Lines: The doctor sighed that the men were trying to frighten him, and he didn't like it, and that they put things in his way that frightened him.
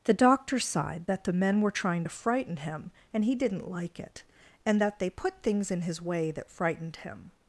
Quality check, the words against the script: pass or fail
pass